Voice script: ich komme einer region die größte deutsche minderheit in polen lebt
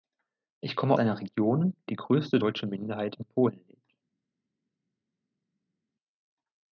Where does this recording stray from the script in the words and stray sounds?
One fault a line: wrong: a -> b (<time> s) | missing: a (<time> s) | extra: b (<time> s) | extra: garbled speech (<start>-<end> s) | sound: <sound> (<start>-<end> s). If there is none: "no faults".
no faults